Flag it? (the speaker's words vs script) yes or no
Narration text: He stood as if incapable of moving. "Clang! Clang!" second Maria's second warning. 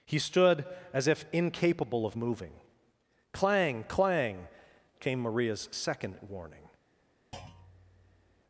yes